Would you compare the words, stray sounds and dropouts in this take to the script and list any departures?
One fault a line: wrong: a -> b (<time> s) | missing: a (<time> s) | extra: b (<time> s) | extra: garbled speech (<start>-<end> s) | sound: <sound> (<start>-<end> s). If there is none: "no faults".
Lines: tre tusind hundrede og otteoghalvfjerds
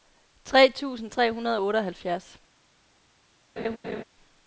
extra: tre (1.1 s)
sound: laugh (3.6-4.0 s)